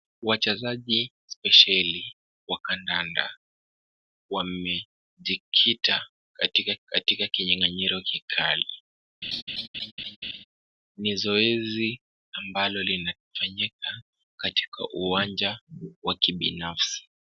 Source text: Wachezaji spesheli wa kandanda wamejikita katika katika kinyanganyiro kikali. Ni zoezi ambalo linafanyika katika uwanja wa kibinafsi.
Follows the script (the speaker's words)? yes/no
yes